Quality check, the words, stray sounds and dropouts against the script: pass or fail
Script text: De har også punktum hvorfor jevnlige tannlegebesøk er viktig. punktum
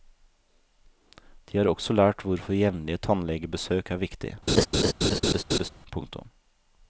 fail